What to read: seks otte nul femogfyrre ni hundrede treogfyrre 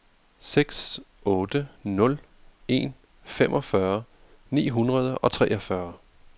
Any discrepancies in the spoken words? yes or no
yes